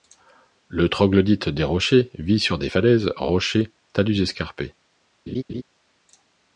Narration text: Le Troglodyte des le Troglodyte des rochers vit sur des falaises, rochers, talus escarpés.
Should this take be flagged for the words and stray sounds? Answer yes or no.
yes